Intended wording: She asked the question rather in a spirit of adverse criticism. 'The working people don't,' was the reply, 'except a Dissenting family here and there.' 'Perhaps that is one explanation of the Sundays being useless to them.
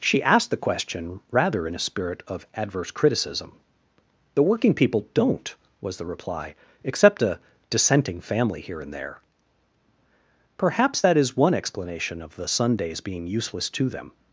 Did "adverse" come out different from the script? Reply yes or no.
no